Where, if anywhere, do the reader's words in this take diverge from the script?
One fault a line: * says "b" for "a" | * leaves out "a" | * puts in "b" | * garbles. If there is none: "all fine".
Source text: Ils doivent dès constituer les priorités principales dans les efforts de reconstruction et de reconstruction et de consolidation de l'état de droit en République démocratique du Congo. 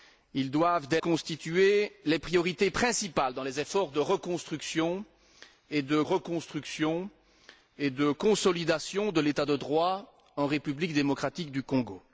all fine